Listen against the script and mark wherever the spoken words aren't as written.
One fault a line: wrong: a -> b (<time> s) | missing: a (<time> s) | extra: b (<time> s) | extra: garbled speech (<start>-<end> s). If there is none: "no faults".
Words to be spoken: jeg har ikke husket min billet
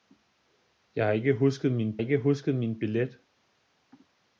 extra: ikke husket min (2.0 s)